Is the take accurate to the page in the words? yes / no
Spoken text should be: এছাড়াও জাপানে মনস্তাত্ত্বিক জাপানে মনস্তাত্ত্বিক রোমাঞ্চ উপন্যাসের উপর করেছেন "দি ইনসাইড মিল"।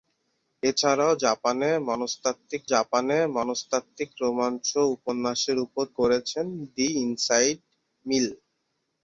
yes